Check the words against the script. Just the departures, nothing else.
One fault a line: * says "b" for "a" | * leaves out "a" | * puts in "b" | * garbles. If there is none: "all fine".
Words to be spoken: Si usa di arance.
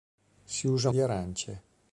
all fine